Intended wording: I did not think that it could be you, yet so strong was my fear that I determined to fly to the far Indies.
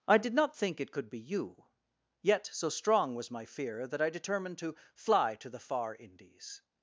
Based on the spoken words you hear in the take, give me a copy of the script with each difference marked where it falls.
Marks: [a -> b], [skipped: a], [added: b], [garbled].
I did not think [skipped: that] it could be you, yet so strong was my fear that I determined to fly to the far Indies.